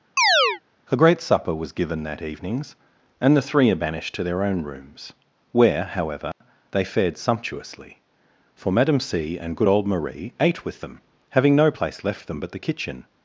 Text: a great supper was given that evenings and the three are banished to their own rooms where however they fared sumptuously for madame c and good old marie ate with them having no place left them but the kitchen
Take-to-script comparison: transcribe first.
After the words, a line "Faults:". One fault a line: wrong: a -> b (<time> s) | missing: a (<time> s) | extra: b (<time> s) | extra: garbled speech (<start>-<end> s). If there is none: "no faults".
a great supper was given that evenings and the three are banished to their own rooms where however they fared sumptuously for madame c and good old marie ate with them having no place left them but the kitchen
Faults:
no faults